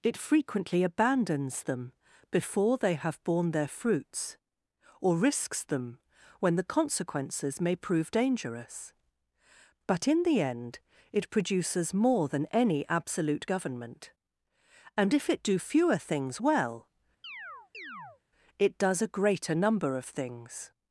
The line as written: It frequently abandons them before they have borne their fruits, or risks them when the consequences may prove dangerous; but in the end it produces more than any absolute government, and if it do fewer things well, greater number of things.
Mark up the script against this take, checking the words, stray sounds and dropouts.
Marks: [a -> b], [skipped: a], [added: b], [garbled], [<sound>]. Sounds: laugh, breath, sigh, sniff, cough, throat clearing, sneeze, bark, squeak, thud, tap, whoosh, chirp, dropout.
It frequently abandons them before they have borne their fruits, or risks them when the consequences may prove dangerous; but in the end it produces more than any absolute government, and if it do fewer things well, [chirp] [added: it does a] greater number of things.